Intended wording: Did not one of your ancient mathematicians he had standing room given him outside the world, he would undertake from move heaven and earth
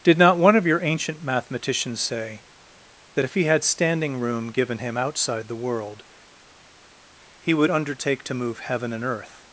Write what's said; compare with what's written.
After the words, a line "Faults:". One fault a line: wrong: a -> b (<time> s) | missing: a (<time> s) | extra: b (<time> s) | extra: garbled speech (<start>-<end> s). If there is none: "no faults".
Did not one of your ancient mathematicians say, that if he had standing room given him outside the world, he would undertake to move heaven and earth
Faults:
extra: say that if (2.0 s)
wrong: from -> to (8.2 s)